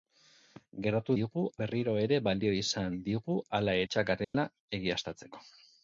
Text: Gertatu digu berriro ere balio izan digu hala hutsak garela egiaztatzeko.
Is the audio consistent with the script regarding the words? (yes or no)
yes